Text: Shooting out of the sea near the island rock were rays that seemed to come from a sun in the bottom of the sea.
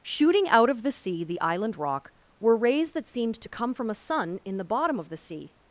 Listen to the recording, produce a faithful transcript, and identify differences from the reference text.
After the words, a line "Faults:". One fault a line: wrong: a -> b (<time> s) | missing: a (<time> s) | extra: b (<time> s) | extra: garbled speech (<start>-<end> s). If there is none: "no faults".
Shooting out of the sea the island rock were rays that seemed to come from a sun in the bottom of the sea.
Faults:
missing: near (1.2 s)